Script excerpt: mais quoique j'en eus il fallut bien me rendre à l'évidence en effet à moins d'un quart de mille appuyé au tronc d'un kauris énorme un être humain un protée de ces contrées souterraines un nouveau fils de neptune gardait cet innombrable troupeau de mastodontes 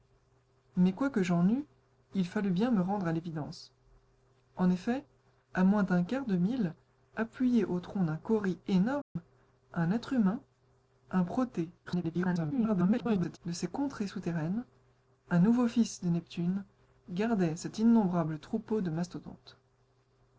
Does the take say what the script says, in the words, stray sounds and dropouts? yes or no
no